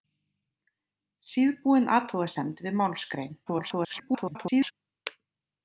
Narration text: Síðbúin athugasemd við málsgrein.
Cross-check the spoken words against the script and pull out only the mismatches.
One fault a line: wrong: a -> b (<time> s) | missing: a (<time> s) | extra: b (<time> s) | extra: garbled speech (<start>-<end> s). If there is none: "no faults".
extra: garbled speech (3.5-4.7 s)